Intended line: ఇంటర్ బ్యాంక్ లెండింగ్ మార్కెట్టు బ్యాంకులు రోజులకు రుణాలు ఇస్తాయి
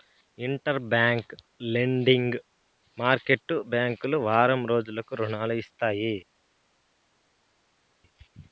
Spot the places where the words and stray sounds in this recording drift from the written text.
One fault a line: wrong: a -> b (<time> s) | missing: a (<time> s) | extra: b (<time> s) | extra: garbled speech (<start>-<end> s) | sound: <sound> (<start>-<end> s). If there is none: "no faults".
extra: వారం (4.3 s)